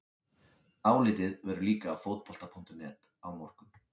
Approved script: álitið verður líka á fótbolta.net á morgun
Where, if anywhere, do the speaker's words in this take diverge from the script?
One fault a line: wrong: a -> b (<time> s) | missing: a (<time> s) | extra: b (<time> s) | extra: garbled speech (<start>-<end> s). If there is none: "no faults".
no faults